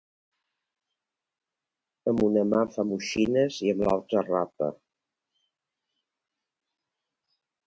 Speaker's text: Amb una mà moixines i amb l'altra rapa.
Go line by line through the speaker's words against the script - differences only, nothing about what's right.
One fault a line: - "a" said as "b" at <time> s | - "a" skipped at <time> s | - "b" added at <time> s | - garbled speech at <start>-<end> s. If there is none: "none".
- "fa" added at 2.7 s